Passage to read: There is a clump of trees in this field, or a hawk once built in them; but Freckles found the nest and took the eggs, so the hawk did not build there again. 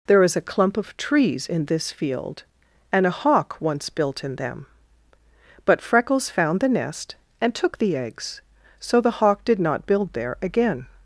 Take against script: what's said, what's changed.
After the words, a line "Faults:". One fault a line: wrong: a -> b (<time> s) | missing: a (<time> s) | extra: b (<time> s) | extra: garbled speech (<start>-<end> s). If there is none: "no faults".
There is a clump of trees in this field, and a hawk once built in them; but Freckles found the nest and took the eggs, so the hawk did not build there again.
Faults:
wrong: or -> and (2.9 s)